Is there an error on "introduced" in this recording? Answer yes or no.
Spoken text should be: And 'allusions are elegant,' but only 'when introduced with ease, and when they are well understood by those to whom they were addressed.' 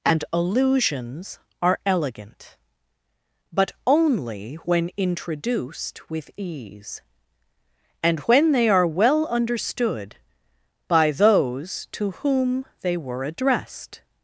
no